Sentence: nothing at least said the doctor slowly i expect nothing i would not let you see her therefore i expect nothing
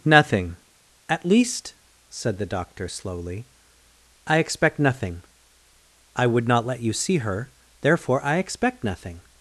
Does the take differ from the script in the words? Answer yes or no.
no